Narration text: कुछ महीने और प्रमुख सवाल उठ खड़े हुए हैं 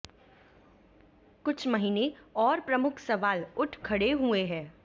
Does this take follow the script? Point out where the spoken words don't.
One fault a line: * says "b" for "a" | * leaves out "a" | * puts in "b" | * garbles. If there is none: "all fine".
all fine